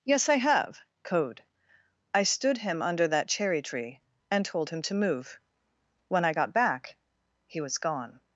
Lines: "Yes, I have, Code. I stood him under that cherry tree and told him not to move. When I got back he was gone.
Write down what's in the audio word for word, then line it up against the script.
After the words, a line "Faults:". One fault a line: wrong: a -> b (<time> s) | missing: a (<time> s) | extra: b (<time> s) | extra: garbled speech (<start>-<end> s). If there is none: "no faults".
"Yes, I have, Code. I stood him under that cherry tree and told him to move. When I got back he was gone.
Faults:
missing: not (4.8 s)